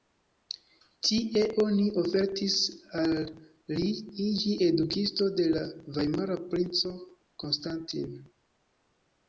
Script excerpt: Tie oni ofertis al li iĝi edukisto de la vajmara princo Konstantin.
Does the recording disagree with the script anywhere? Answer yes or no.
no